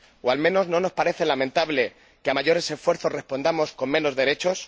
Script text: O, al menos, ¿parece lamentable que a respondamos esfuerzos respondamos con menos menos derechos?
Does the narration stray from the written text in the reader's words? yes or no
yes